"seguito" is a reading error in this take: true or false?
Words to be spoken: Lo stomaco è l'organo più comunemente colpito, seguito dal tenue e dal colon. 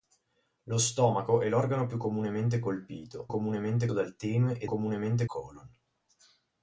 true